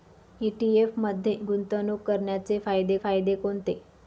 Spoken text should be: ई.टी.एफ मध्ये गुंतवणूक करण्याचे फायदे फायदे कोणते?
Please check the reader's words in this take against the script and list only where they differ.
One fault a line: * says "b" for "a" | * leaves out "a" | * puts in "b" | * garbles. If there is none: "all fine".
all fine